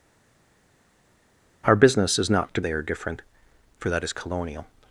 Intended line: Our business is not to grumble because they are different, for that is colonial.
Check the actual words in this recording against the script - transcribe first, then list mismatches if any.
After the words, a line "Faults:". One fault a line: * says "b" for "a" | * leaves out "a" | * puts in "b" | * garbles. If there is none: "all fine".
Our business is not to they are different, for that is colonial.
Faults:
* leaves out "grumble because"